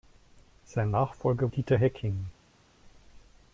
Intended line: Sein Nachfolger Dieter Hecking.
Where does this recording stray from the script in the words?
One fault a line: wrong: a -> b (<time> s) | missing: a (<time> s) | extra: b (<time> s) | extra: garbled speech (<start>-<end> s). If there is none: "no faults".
no faults